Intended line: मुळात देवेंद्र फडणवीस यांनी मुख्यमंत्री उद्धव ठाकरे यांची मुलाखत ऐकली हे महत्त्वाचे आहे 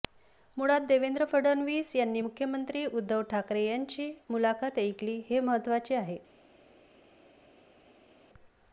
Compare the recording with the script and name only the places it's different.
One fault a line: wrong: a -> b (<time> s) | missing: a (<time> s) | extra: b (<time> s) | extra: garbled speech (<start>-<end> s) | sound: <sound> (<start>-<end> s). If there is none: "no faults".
no faults